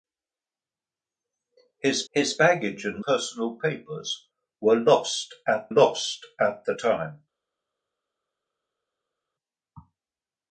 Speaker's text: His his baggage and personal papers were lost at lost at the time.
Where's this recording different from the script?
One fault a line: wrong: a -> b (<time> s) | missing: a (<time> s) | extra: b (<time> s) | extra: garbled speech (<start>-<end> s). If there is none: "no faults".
no faults